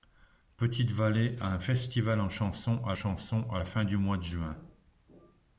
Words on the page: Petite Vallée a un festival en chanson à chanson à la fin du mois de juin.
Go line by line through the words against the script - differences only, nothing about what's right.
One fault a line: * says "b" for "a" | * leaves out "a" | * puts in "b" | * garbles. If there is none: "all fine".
all fine